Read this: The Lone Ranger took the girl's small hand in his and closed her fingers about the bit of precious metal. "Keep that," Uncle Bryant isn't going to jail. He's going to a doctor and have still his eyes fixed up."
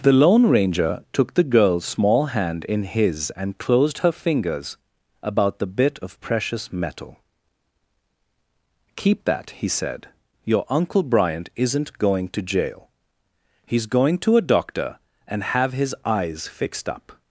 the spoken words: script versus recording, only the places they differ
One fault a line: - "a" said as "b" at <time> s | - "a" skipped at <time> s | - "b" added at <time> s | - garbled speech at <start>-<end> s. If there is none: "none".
- "he said Your" added at 9.5 s
- "still" skipped at 15.7 s